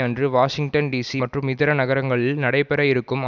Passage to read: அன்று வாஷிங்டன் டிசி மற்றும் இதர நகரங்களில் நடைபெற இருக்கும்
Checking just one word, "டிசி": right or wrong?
right